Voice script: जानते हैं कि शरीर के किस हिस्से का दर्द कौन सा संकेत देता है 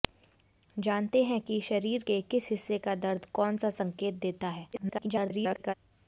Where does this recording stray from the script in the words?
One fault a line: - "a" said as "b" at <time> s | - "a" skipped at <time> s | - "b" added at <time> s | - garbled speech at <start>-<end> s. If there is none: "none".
- garbled speech at 4.7-5.7 s